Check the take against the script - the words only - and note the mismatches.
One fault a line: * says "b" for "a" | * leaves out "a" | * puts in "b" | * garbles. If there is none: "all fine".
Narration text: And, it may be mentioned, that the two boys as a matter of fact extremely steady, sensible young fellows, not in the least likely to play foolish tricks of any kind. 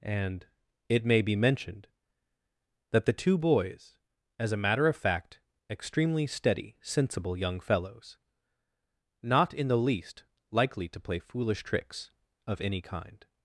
all fine